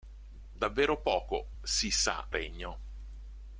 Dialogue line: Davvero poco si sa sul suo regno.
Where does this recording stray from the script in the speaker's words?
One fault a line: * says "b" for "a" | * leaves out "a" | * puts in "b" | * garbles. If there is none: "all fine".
* leaves out "sul suo"